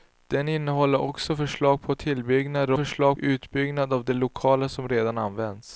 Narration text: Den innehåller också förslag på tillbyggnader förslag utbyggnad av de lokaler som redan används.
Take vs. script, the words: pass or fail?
pass